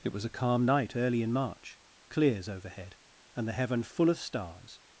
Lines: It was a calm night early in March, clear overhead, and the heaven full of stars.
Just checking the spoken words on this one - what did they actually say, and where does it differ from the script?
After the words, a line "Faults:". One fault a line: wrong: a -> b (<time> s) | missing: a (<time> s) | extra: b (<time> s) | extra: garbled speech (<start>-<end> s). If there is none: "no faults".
It was a calm night early in March, clears overhead, and the heaven full of stars.
Faults:
wrong: clear -> clears (2.1 s)